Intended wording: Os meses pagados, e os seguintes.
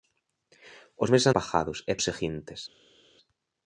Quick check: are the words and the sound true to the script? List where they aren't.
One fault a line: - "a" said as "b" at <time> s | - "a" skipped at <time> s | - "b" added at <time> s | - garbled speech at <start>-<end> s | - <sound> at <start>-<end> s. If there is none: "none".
none